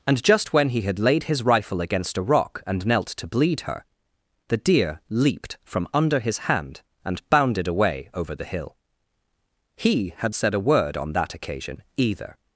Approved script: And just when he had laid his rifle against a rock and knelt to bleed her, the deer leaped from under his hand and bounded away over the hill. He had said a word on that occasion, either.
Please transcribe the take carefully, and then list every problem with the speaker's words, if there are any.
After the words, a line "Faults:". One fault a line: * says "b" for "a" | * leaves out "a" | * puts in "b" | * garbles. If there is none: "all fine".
And just when he had laid his rifle against a rock and knelt to bleed her, the deer leaped from under his hand and bounded away over the hill. He had said a word on that occasion, either.
Faults:
all fine